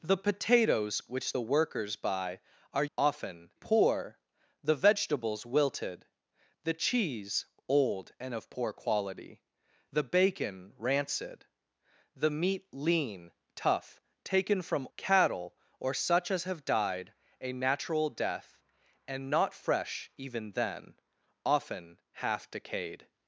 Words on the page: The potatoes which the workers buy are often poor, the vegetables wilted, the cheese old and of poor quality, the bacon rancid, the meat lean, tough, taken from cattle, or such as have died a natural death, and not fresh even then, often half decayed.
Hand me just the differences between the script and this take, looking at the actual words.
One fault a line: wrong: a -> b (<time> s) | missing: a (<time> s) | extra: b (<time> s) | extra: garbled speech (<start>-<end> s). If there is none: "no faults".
no faults